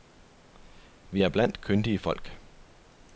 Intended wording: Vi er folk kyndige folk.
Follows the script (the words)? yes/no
no